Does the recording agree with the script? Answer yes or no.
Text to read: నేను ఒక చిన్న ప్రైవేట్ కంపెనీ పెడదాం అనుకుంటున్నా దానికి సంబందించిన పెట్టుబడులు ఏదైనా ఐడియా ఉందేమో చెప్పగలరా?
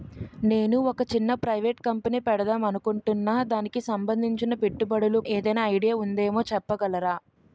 yes